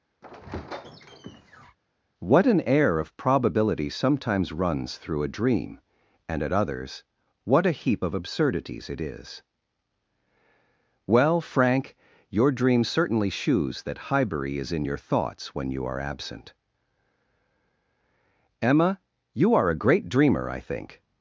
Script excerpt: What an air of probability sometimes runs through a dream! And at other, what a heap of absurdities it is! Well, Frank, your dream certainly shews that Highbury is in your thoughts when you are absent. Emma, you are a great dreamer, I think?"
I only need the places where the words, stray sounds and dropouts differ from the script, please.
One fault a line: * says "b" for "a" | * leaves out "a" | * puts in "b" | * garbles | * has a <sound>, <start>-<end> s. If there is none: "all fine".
* has a squeak, 0.2-1.8 s
* says "others" for "other"